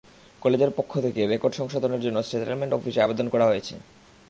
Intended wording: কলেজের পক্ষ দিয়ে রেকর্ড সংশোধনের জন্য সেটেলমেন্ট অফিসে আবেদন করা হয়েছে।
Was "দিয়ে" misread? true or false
true